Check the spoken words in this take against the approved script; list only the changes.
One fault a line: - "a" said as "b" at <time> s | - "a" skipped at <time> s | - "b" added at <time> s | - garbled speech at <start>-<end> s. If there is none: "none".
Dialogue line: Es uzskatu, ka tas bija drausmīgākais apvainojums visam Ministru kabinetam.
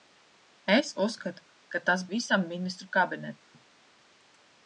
- "bija drausmīgākais apvainojums" skipped at 2.0 s